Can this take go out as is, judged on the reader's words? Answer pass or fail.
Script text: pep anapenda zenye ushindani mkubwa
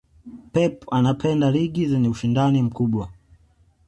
fail